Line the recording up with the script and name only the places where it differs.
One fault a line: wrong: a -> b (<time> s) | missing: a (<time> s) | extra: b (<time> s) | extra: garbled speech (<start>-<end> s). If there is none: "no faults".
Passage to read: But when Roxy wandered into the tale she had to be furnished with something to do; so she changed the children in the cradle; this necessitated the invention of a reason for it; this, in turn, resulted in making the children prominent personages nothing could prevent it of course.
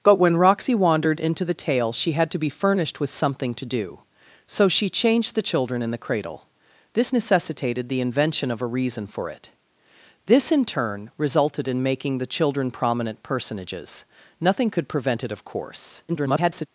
extra: garbled speech (16.1-16.7 s)